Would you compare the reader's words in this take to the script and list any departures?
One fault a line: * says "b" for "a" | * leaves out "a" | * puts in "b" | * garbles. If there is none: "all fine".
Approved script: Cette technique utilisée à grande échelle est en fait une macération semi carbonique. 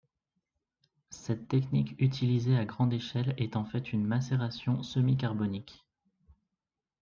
all fine